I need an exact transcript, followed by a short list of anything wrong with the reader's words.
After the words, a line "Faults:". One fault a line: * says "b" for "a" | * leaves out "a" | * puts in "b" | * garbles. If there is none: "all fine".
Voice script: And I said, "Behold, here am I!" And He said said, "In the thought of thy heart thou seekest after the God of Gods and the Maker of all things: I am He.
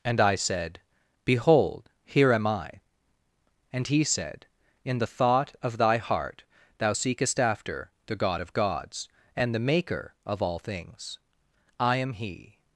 And I said, "Behold, here am I!" And He said, "In the thought of thy heart thou seekest after the God of Gods and the Maker of all things: I am He.
Faults:
* leaves out "said"